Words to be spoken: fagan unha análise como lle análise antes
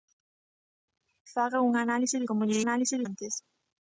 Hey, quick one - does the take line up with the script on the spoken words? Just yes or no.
yes